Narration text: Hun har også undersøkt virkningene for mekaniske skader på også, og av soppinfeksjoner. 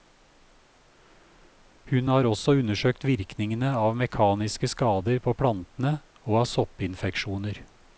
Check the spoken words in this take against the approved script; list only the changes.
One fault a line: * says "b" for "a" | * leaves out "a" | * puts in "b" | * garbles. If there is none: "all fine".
* says "av" for "for"
* says "plantene" for "også"